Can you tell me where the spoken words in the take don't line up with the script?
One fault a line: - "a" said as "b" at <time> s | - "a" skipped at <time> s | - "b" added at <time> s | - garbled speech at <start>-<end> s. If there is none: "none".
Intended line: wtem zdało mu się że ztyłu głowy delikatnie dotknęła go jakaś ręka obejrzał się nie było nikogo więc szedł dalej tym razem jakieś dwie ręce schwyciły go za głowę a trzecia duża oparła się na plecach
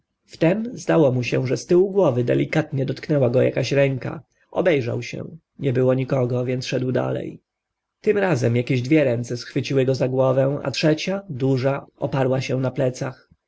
none